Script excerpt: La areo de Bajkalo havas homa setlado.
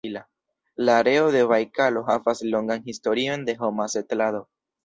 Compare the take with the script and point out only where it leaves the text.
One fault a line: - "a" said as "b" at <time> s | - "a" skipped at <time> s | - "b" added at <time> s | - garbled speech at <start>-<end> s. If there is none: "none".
- "longan historion de" added at 2.5 s